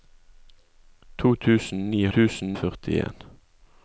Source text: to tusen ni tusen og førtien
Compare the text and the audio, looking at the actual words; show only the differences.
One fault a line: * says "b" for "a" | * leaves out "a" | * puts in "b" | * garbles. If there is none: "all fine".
all fine